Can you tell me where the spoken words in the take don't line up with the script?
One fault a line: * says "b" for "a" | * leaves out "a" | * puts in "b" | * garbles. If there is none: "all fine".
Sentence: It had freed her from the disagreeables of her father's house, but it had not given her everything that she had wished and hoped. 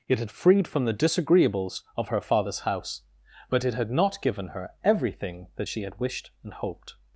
* leaves out "her"